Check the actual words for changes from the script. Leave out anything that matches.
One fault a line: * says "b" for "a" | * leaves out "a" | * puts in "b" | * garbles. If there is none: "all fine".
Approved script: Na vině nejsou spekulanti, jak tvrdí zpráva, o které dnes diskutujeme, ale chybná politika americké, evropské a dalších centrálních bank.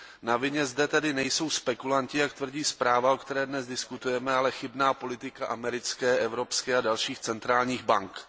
* puts in "zde tedy"